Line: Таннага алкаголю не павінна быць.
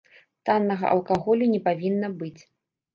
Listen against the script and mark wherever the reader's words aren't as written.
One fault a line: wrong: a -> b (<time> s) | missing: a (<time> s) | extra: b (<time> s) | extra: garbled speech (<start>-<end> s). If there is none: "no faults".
no faults